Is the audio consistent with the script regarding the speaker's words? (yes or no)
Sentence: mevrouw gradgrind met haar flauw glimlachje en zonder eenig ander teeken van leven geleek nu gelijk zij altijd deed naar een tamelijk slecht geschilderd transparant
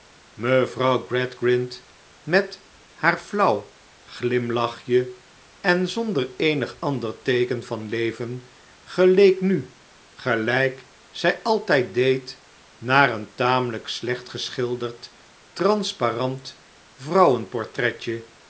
yes